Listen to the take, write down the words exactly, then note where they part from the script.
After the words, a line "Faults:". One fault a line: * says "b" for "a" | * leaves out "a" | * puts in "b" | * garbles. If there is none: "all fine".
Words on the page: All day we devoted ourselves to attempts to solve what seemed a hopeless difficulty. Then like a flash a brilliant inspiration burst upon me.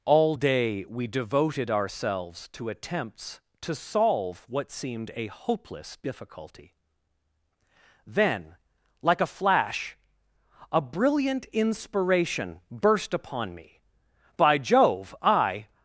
All day we devoted ourselves to attempts to solve what seemed a hopeless difficulty. Then like a flash a brilliant inspiration burst upon me. "By Jove, I
Faults:
* puts in "By Jove I"